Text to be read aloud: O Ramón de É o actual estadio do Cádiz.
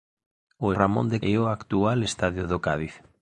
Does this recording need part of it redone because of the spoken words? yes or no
no